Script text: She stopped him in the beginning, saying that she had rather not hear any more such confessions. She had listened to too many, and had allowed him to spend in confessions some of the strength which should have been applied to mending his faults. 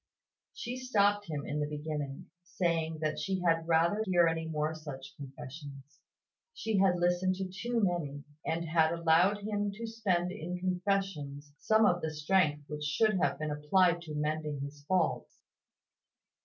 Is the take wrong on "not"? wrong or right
wrong